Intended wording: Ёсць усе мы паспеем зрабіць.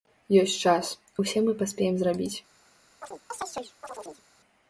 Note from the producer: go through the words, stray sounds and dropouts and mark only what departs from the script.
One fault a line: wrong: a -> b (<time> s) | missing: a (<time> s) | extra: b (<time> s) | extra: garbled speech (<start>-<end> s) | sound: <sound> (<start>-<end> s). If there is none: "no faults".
extra: час (0.7 s)
sound: chirp (3.0-4.2 s)